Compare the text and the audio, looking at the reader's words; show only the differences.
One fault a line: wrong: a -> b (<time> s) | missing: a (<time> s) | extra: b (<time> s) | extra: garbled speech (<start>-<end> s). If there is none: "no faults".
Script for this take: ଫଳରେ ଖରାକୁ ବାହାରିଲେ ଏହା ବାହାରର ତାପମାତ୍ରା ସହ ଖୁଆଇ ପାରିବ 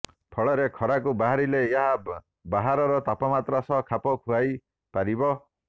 extra: ଖାପ (3.9 s)